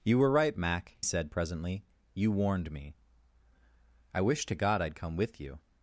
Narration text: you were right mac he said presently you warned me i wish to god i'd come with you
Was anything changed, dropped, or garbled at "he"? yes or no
yes